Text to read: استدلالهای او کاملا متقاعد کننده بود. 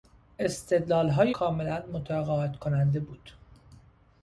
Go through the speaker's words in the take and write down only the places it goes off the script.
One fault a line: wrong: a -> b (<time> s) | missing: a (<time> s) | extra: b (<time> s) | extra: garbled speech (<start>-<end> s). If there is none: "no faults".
missing: او (1.3 s)